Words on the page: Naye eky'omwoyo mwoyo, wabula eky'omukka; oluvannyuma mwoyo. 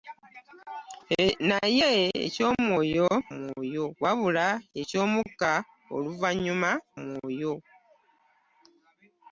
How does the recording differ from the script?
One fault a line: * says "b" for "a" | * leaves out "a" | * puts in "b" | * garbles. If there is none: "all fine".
all fine